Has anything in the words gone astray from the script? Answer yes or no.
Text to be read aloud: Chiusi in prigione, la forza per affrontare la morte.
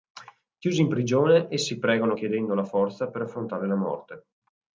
yes